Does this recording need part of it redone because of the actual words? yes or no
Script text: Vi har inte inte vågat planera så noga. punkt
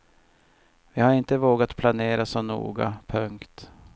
yes